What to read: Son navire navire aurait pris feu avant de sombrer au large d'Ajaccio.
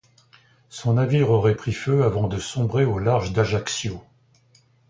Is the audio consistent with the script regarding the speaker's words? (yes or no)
no